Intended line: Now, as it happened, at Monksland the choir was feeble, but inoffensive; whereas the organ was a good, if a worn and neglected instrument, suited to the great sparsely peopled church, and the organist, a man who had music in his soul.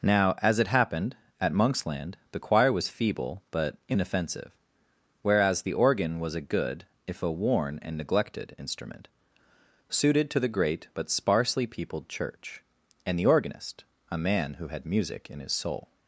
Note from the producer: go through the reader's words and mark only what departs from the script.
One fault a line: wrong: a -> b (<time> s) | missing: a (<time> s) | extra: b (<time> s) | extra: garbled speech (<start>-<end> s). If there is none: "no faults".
extra: but (10.9 s)